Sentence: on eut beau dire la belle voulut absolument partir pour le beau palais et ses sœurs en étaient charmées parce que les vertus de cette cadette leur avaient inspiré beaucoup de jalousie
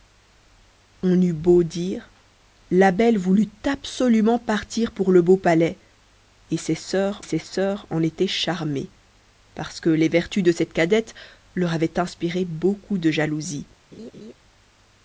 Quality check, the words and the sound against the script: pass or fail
fail